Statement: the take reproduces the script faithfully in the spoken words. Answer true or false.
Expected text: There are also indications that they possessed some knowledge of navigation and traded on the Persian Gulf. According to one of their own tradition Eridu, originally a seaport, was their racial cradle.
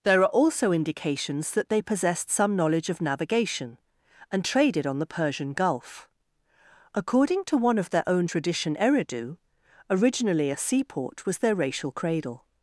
true